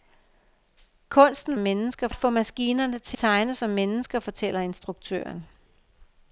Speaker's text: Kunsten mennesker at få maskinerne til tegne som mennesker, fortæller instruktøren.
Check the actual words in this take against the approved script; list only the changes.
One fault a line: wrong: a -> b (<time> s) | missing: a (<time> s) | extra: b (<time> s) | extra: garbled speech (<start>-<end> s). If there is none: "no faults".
no faults